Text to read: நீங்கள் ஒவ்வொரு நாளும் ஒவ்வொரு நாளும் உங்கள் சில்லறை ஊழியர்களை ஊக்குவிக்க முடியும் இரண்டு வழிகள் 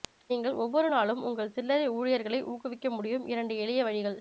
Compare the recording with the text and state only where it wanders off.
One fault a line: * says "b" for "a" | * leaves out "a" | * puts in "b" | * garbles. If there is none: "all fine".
* leaves out "ஒவ்வொரு நாளும்"
* puts in "எளிய"